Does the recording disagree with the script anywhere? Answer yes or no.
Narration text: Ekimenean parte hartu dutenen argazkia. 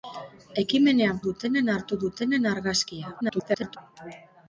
yes